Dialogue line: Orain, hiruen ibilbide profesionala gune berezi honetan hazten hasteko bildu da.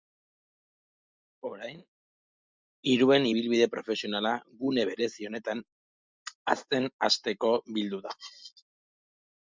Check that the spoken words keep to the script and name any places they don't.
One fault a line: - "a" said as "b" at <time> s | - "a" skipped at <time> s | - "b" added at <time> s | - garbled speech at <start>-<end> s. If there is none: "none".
none